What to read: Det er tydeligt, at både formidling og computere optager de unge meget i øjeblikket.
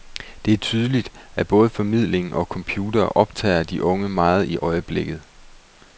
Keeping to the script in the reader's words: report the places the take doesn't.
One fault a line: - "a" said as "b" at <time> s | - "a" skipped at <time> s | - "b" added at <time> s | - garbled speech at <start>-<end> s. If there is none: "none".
none